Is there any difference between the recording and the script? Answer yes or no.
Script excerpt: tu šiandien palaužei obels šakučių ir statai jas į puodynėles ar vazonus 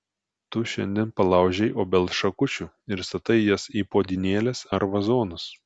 no